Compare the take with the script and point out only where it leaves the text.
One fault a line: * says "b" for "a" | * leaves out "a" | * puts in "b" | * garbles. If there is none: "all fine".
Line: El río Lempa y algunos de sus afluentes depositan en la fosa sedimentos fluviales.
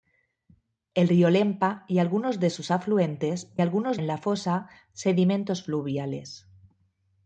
* says "algunos" for "depositan"